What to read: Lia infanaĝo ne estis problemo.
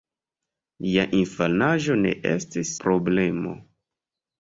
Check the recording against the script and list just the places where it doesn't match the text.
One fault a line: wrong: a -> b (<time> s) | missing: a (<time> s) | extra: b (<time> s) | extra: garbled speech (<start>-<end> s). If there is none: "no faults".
no faults